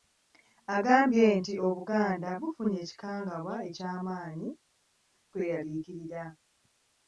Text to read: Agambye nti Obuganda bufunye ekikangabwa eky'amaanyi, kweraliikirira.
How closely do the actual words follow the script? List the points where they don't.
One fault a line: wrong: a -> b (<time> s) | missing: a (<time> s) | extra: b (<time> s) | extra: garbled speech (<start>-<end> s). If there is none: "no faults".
no faults